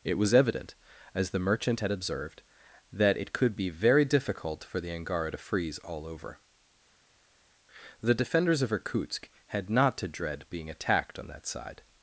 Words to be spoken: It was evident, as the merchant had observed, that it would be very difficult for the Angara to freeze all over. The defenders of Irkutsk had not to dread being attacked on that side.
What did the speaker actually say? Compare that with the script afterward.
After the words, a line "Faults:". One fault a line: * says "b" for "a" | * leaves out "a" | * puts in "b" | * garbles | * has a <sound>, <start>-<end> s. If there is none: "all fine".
It was evident, as the merchant had observed, that it could be very difficult for the Angara to freeze all over. The defenders of Irkutsk had not to dread being attacked on that side.
Faults:
* says "could" for "would"